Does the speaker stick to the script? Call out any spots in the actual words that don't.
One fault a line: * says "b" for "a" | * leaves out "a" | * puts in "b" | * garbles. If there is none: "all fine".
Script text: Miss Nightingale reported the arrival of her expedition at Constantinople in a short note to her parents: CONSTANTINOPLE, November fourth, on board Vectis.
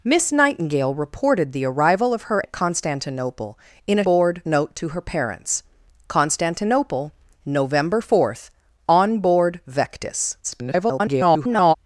* leaves out "expedition"
* says "board" for "short"
* garbles